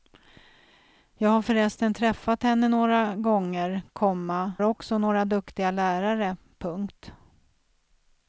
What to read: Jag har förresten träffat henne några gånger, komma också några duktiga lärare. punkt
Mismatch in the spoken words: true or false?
false